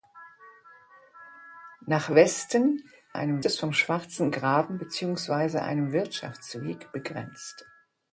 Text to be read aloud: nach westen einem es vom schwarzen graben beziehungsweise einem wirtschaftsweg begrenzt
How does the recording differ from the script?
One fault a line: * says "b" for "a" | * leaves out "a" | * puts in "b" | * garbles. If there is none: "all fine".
all fine